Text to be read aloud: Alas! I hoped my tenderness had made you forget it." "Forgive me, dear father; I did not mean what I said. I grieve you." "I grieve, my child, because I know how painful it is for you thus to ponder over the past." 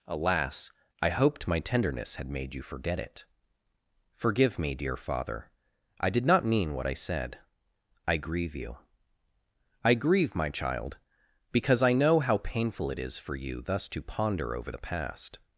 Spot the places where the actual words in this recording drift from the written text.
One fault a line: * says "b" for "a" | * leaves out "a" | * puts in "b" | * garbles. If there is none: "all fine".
all fine